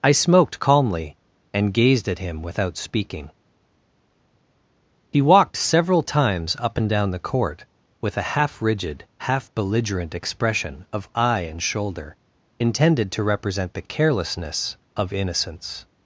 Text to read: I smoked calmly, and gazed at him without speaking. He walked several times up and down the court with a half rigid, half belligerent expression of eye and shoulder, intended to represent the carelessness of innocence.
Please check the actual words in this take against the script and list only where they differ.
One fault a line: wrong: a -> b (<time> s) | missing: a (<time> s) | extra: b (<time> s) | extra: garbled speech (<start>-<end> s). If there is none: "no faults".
no faults